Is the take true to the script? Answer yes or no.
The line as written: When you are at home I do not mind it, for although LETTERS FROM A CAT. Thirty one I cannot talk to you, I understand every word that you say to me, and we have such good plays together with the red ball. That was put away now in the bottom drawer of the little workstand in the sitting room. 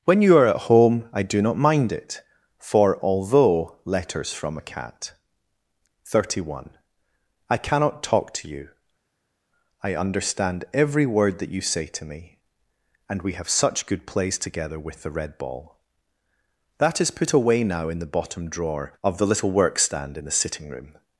no